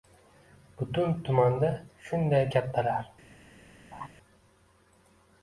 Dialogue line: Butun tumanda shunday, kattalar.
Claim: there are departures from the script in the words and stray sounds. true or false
true